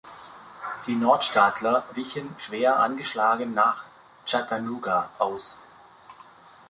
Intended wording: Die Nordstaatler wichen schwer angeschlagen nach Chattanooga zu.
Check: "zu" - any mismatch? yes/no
yes